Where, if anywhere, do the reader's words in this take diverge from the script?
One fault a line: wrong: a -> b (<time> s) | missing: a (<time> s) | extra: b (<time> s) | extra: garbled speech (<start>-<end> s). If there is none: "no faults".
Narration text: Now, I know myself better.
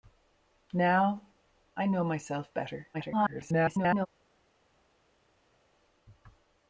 extra: garbled speech (2.9-4.1 s)